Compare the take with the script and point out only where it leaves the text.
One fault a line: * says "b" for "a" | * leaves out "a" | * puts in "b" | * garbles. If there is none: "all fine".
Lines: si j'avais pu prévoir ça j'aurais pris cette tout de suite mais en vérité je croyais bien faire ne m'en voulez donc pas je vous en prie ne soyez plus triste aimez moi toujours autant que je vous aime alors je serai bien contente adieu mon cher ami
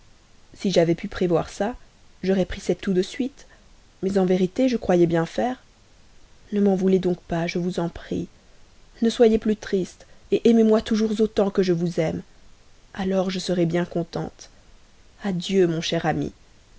all fine